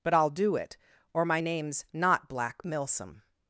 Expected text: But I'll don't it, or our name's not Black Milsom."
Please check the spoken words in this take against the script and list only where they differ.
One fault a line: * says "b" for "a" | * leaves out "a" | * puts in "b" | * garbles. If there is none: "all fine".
* says "do" for "don't"
* says "my" for "our"